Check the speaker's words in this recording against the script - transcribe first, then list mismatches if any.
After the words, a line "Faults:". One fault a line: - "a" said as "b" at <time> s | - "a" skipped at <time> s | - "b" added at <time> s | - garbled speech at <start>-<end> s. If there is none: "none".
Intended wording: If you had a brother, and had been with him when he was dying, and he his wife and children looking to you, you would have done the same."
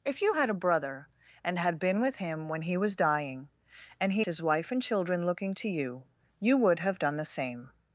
If you had a brother, and had been with him when he was dying, and he his wife and children looking to you, you would have done the same."
Faults:
none